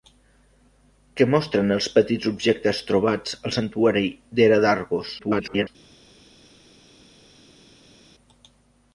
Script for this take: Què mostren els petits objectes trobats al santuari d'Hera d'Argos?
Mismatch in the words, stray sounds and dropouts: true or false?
true